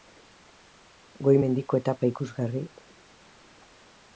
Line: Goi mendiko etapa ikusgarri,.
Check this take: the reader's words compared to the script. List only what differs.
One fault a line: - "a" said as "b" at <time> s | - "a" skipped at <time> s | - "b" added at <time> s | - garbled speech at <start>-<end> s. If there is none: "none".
none